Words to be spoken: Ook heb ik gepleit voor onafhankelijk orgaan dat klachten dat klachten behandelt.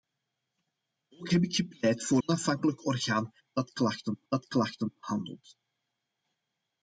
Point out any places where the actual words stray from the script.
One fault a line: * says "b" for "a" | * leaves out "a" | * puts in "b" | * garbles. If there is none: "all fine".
all fine